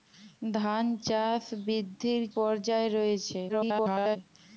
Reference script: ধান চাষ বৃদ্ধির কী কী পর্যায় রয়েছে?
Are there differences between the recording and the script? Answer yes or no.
yes